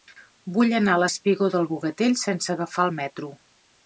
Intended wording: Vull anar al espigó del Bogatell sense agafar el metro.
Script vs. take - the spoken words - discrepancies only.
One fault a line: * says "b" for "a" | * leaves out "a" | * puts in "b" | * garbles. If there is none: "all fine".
all fine